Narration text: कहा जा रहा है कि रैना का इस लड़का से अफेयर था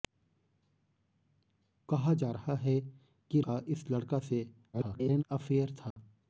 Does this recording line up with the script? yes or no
no